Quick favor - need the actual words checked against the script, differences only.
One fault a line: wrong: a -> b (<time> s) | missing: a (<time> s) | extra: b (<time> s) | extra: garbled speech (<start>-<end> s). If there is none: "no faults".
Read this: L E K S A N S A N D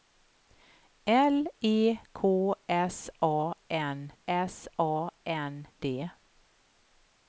no faults